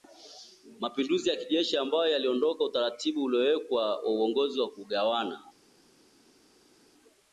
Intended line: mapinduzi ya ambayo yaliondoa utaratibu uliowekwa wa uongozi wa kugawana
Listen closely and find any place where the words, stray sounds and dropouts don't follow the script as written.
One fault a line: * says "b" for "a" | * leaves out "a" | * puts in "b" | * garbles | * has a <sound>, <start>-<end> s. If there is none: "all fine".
* puts in "kijeshi"